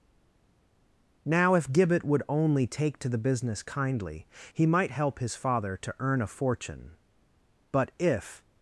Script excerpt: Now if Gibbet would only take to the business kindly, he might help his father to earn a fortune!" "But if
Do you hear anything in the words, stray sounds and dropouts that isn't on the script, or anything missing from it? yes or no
no